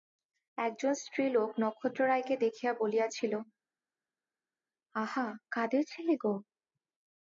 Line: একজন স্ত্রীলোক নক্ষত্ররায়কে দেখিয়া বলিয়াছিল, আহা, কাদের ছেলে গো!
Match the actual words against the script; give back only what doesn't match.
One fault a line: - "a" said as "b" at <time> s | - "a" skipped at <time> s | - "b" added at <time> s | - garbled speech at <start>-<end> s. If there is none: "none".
none